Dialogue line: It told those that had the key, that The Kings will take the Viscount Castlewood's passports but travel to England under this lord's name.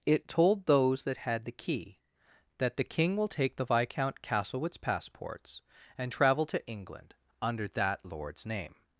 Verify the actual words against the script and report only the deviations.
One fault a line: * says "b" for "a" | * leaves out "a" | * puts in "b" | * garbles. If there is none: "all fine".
* says "King" for "Kings"
* says "and" for "but"
* says "that" for "this"